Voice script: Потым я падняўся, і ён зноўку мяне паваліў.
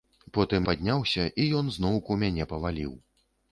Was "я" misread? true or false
true